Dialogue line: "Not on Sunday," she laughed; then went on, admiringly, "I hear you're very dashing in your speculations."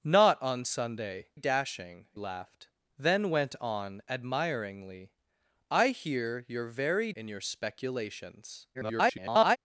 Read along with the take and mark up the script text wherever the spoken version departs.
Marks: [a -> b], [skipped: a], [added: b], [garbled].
"Not on Sunday," [she -> dashing] laughed; then went on, admiringly, "I hear you're very [skipped: dashing] in your speculations." [garbled]